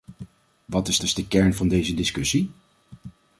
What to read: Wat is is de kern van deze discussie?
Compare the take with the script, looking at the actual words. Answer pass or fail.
pass